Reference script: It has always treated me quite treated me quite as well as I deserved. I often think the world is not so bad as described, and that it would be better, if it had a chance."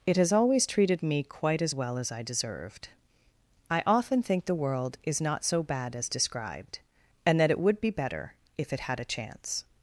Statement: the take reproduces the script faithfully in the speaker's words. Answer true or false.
false